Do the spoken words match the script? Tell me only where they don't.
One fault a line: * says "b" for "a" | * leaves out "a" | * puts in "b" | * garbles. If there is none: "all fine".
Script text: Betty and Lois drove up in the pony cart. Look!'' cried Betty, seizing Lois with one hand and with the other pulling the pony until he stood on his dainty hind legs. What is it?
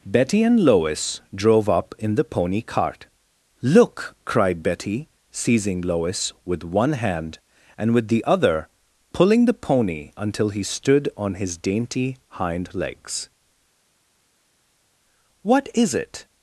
all fine